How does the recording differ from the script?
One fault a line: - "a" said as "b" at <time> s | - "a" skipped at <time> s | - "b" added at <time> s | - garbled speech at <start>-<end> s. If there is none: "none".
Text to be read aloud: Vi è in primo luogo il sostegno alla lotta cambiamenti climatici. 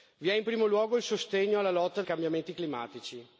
none